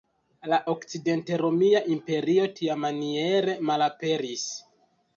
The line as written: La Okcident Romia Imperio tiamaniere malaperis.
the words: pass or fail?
pass